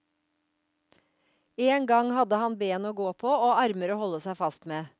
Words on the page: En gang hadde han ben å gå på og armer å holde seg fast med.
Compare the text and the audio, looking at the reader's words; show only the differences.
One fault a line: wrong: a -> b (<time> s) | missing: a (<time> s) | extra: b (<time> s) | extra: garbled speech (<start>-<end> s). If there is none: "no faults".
no faults